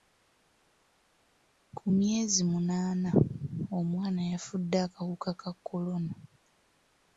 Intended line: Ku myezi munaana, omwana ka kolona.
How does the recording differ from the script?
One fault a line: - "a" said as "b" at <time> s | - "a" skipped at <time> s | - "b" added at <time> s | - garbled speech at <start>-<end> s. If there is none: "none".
- "yafudde akawuka" added at 4.3 s